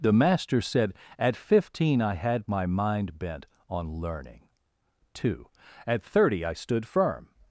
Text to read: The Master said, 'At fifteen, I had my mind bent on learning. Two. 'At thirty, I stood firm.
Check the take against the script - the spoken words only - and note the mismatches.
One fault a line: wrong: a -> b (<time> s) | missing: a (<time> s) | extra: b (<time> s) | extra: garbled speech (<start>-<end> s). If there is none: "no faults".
no faults